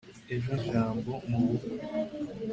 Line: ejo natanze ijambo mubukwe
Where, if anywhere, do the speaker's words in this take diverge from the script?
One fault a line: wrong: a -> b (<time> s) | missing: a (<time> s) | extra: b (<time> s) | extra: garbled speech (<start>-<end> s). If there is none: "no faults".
missing: natanze (0.5 s)